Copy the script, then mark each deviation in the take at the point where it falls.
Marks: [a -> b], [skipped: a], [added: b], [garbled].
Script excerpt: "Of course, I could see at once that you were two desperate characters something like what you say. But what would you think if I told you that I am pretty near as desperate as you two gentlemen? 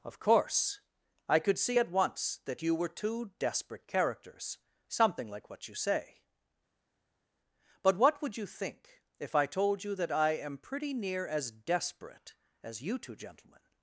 "Of course, I could see at once that you were two desperate characters something like what you say. But what would you think if I told you that I am pretty near as desperate as you two gentlemen?